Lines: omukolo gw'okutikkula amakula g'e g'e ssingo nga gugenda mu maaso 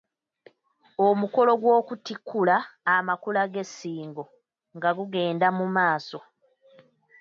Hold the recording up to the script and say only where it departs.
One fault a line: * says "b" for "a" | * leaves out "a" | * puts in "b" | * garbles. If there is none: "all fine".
* leaves out "g'e"